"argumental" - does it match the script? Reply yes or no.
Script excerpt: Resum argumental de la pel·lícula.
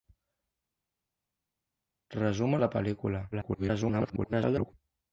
no